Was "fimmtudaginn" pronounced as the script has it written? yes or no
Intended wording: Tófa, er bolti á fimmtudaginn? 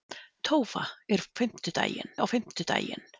yes